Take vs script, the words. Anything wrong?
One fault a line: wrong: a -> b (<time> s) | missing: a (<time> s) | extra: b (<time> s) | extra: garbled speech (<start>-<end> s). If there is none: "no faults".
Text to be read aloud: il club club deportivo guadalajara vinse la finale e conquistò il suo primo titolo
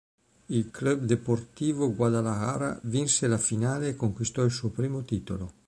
missing: club (1.0 s)